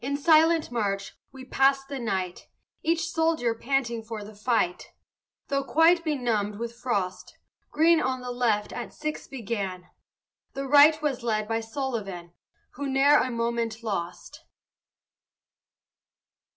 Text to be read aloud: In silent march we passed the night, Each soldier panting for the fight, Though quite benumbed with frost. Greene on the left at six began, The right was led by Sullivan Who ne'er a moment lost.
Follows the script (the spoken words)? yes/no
yes